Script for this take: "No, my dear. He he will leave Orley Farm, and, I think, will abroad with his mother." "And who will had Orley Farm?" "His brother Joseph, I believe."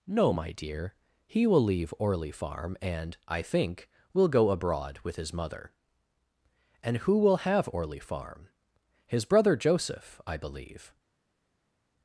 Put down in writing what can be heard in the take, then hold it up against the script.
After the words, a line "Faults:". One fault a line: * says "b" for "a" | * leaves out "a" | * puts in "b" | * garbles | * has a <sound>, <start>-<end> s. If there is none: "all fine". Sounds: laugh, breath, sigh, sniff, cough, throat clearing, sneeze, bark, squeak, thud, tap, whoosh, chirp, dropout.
"No, my dear. He will leave Orley Farm, and, I think, will go abroad with his mother." "And who will have Orley Farm?" "His brother Joseph, I believe."
Faults:
* leaves out "he"
* puts in "go"
* says "have" for "had"